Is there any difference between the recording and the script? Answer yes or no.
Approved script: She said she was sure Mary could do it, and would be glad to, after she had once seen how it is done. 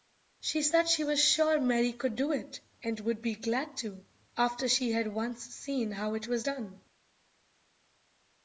yes